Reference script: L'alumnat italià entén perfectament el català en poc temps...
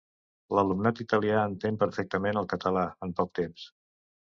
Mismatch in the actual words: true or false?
false